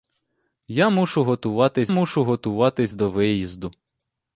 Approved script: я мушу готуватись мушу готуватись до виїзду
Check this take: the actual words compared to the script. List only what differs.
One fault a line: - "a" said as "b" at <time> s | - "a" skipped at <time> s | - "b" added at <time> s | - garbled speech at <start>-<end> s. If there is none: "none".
none